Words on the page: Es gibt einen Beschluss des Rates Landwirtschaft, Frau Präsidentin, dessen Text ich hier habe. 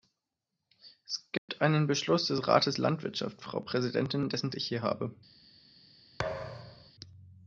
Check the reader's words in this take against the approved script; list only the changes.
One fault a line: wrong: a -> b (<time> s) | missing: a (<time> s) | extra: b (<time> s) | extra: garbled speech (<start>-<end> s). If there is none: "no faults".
missing: Text (4.5 s)